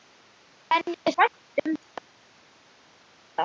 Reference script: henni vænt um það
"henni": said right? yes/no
yes